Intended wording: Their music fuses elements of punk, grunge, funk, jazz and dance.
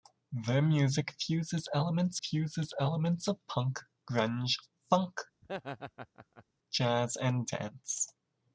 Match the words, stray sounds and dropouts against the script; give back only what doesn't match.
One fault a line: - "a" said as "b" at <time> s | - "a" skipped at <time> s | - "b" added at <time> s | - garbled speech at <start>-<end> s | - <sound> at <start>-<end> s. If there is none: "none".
- "fuses elements" added at 2.2 s
- laugh at 5.4-6.4 s